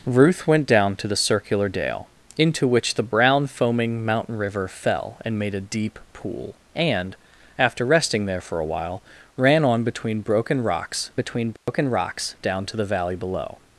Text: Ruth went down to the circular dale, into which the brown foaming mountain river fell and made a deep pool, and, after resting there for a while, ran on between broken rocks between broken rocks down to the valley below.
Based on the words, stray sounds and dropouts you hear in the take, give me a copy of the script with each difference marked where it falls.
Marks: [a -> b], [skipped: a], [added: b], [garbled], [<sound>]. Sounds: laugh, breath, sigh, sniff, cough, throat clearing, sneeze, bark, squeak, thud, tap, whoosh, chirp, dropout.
Ruth went down to the circular dale, into which the brown foaming mountain river fell and made a deep pool, and, after resting there for a while, ran on between broken rocks between broken [dropout] rocks down to the valley below.